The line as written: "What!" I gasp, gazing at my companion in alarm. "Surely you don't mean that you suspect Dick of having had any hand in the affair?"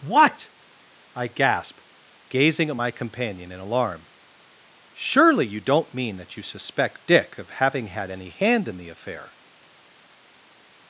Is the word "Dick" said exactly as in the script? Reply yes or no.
yes